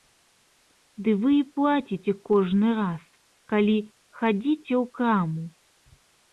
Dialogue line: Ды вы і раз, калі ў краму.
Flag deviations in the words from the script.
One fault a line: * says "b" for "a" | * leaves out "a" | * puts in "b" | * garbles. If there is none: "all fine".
* puts in "плаціце кожны"
* puts in "хадзіце"